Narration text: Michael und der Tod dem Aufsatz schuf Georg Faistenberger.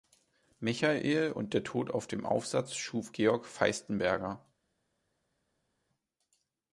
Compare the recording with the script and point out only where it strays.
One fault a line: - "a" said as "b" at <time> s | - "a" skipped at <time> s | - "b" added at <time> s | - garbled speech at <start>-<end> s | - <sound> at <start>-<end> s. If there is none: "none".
- "auf" added at 1.9 s